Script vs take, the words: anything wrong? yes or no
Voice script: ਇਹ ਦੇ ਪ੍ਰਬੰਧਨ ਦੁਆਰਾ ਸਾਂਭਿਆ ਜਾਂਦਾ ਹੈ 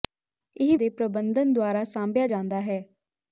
no